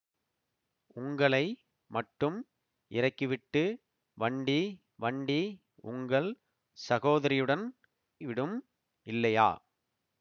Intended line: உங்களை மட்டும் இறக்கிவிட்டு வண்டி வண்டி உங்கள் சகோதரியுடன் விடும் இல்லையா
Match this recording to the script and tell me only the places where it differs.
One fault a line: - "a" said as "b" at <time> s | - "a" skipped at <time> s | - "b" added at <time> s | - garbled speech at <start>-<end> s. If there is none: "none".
none